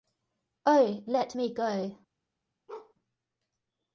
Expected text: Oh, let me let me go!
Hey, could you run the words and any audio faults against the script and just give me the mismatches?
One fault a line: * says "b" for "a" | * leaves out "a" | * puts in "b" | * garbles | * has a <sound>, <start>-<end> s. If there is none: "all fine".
* leaves out "let me"
* has a bark, 2.7-2.9 s